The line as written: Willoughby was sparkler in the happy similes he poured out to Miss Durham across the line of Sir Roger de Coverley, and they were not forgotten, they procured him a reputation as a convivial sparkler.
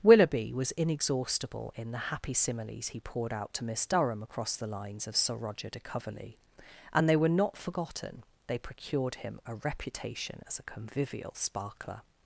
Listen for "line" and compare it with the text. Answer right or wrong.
wrong